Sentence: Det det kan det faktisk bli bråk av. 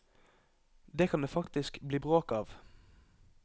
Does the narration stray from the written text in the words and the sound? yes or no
yes